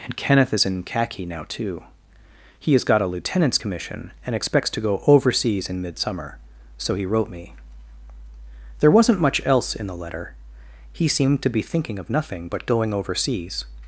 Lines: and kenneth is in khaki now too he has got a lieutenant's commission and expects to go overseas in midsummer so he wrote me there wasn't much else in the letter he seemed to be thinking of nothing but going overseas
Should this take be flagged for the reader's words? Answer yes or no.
no